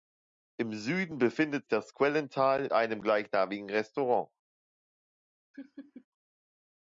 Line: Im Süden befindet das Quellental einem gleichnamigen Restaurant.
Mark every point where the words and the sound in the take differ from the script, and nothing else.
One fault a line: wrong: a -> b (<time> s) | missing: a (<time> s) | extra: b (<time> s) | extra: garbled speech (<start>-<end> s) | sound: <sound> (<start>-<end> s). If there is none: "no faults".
sound: laugh (5.5-6.1 s)